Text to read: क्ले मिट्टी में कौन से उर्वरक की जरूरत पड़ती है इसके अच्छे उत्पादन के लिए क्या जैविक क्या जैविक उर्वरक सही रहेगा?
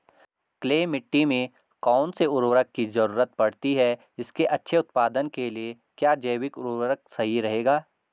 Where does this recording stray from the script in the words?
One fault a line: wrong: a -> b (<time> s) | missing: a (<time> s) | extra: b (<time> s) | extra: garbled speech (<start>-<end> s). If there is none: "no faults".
missing: क्या जैविक (6.6 s)